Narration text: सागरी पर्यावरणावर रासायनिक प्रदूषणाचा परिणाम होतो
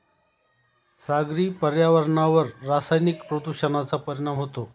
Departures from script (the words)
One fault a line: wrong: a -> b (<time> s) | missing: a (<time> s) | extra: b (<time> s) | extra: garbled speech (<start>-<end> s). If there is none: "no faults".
no faults